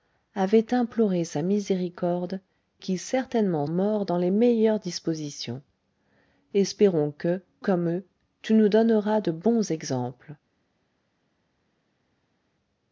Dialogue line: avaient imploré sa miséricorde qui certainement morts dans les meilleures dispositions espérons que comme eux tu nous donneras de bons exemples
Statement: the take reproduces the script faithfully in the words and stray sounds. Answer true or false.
true